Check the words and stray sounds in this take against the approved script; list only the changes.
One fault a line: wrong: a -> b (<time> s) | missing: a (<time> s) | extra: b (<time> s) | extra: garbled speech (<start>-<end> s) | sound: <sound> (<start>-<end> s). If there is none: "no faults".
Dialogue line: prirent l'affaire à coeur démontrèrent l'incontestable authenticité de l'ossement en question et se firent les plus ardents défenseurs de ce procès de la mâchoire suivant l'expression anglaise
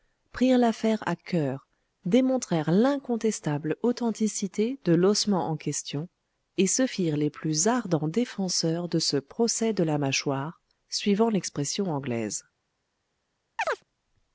sound: chirp (13.6-13.8 s)